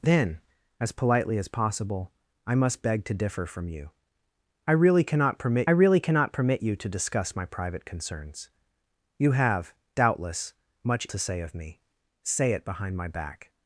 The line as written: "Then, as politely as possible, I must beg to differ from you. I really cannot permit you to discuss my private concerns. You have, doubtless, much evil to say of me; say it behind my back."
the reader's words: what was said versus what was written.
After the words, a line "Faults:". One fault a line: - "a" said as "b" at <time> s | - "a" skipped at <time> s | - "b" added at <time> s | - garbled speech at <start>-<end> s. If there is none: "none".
"Then, as politely as possible, I must beg to differ from you. I really cannot permit really cannot permit you to discuss my private concerns. You have, doubtless, much to say of me; say it behind my back."
Faults:
- "really cannot permit" added at 5.7 s
- "evil" skipped at 11.1 s